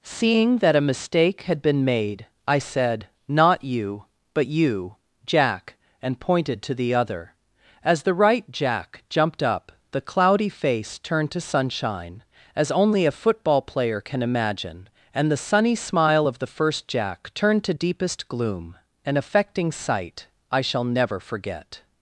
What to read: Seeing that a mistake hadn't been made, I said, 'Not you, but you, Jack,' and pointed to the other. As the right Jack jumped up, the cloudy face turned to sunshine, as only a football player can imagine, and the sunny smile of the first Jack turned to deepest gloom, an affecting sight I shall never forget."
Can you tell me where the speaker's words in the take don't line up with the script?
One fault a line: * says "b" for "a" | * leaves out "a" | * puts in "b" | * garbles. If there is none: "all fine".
* says "had" for "hadn't"